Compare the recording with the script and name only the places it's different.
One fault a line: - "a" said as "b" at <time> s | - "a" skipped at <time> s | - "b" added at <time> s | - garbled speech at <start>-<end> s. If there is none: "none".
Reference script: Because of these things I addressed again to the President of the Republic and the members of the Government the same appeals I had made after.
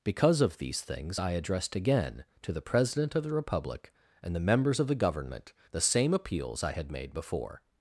- "after" said as "before" at 7.1 s